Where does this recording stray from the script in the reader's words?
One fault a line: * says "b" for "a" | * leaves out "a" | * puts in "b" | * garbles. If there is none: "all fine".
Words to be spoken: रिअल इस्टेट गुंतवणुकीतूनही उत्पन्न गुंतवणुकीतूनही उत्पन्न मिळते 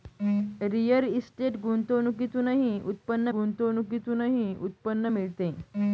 all fine